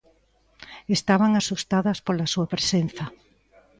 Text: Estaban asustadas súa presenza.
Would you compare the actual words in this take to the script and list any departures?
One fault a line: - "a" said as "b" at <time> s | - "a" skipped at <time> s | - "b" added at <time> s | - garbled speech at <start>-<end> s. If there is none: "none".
- "pola" added at 2.1 s